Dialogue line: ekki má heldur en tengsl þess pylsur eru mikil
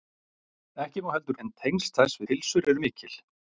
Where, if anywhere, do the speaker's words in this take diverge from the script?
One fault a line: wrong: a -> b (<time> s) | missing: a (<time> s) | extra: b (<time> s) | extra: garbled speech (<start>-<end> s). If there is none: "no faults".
no faults